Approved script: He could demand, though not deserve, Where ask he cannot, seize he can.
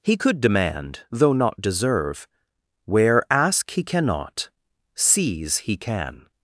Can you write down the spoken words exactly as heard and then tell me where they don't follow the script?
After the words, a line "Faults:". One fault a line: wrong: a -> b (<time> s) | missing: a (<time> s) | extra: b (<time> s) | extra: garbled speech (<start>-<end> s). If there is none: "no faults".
He could demand, though not deserve, Where ask he cannot, seize he can.
Faults:
no faults